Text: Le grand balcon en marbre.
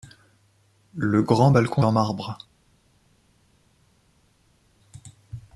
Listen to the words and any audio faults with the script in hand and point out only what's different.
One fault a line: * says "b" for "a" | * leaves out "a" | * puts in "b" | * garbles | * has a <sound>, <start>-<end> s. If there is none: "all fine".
all fine